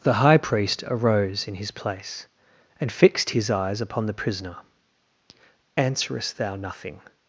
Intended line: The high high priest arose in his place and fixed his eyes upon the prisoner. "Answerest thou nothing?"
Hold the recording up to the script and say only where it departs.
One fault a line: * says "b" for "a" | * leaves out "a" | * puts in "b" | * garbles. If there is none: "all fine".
* leaves out "high"